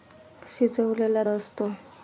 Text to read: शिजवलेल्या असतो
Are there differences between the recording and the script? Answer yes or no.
no